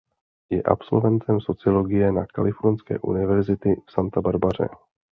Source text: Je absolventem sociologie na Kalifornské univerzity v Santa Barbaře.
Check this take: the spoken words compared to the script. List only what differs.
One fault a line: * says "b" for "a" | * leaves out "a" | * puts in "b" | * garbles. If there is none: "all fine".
all fine